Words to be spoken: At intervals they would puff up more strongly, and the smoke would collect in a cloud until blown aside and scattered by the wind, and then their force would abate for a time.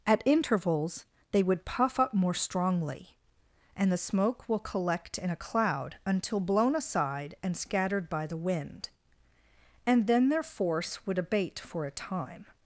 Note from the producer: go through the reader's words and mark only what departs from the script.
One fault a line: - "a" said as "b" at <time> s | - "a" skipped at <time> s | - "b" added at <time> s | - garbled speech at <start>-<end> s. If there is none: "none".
- "would" said as "will" at 4.5 s